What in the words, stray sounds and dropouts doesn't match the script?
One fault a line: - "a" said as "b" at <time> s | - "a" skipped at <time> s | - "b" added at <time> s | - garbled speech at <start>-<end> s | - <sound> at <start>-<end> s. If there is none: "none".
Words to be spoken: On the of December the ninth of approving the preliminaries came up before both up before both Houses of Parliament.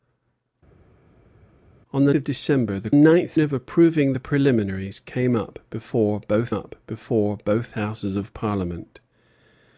none